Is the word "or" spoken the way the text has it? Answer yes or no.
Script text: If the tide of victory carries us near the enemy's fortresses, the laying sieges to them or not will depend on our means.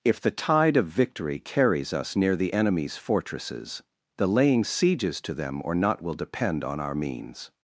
yes